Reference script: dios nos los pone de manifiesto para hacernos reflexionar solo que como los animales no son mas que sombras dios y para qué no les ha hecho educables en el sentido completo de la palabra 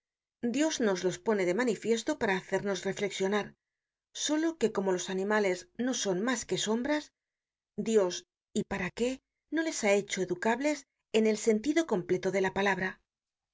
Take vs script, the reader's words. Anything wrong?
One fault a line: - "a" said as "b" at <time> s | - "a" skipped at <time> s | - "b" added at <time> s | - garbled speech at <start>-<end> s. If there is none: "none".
none